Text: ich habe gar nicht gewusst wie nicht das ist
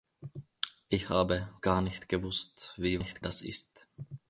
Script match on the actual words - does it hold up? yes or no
yes